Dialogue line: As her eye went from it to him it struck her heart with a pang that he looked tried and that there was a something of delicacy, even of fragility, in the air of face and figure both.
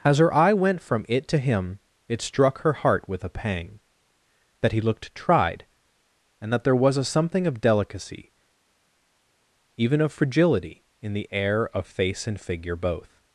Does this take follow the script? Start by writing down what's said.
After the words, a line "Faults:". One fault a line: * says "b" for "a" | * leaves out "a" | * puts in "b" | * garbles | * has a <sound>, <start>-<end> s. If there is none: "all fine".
As her eye went from it to him it struck her heart with a pang that he looked tried and that there was a something of delicacy, even of fragility, in the air of face and figure both.
Faults:
all fine